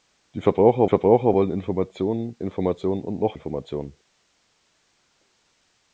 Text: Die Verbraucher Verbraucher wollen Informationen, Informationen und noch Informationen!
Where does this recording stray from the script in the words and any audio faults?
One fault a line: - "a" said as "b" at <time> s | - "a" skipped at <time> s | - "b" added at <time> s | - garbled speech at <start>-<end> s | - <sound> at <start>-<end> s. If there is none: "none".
none